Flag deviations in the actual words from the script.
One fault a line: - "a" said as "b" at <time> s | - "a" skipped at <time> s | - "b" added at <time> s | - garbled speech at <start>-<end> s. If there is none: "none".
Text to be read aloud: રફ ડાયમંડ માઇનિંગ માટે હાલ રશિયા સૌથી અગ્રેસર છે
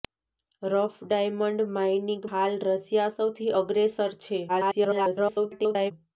- "માટે" skipped at 2.2 s
- garbled speech at 4.5-5.9 s